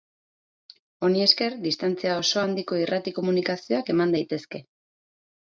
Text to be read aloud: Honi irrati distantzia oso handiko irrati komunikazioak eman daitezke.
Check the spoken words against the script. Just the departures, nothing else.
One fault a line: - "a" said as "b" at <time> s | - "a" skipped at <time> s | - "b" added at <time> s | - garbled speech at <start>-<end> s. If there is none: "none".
- "irrati" said as "esker" at 1.2 s